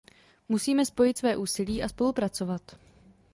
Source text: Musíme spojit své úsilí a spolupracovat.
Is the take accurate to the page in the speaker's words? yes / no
yes